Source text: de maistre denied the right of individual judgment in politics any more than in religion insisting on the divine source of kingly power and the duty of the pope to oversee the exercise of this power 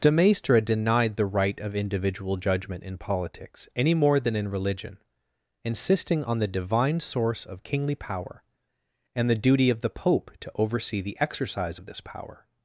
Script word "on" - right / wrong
right